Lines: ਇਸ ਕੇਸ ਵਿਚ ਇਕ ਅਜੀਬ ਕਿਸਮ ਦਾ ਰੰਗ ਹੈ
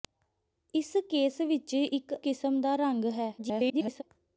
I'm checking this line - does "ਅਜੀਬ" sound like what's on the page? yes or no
no